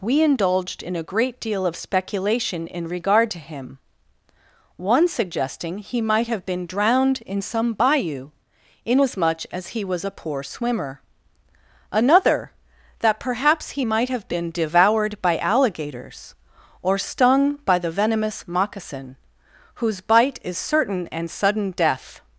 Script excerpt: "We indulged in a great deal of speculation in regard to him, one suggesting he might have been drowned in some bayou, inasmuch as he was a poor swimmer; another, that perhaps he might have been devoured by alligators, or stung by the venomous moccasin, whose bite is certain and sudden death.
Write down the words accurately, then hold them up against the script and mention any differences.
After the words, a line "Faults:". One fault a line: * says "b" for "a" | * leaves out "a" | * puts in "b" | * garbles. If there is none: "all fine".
"We indulged in a great deal of speculation in regard to him, one suggesting he might have been drowned in some bayou, inasmuch as he was a poor swimmer; another, that perhaps he might have been devoured by alligators, or stung by the venomous moccasin, whose bite is certain and sudden death.
Faults:
all fine